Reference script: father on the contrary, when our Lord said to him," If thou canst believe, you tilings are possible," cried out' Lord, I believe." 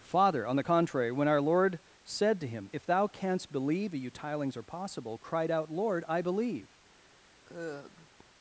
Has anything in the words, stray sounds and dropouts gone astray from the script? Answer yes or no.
yes